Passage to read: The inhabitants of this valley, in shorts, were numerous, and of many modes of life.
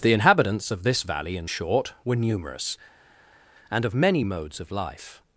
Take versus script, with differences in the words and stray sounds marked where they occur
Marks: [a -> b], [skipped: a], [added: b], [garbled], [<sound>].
The inhabitants of this valley, in [shorts, -> short] were numerous, and of many modes of life.